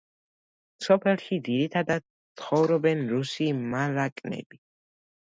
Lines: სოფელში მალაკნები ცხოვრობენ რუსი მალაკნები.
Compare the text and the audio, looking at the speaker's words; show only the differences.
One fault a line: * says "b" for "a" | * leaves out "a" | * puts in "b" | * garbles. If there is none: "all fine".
* says "ძირითადად" for "მალაკნები"